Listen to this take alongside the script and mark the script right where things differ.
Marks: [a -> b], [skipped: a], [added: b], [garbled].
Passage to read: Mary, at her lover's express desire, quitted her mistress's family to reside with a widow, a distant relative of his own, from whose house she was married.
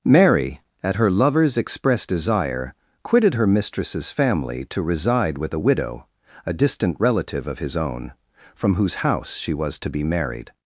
Mary, at her lover's express desire, quitted her mistress's family to reside with a widow, a distant relative of his own, from whose house she was [added: to be] married.